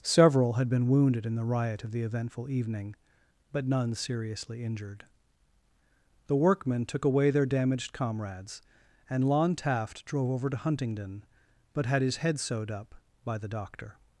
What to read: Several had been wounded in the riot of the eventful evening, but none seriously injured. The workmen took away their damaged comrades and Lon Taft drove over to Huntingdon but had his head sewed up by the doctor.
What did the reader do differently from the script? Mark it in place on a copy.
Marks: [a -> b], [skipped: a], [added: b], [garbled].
Several had been wounded in the riot of the eventful evening, but none seriously injured. The workmen took away their damaged comrades and Lon Taft drove over to Huntingdon but had his head sewed up by the doctor.